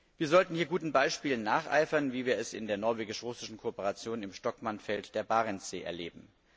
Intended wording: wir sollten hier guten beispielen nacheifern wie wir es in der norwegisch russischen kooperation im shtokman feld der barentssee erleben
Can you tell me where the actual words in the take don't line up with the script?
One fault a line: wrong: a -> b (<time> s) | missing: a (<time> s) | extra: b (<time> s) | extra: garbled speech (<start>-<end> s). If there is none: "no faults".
no faults